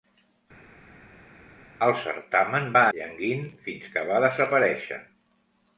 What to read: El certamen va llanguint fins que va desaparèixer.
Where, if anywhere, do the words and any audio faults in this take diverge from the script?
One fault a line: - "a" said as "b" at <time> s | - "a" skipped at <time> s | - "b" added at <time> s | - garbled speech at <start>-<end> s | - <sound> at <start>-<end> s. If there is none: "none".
none